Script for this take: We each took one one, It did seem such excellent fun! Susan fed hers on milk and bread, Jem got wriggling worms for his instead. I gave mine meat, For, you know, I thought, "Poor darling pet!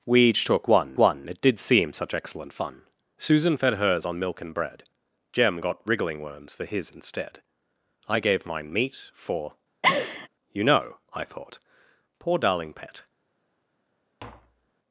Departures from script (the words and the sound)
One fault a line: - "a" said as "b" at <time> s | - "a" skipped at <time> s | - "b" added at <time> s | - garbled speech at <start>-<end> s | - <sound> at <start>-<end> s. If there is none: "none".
- laugh at 9.8-10.3 s
- tap at 14.2-14.7 s